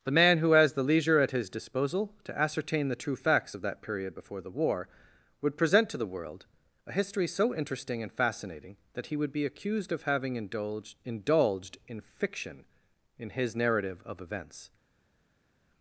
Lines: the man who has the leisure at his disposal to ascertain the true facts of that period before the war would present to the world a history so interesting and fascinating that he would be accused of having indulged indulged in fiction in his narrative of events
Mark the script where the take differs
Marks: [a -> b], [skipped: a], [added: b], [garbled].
the man who has the leisure at his disposal to ascertain the true facts of that period before the war would present to the world a history so interesting and fascinating that he would be accused of having indulged indulged in fiction in his narrative of events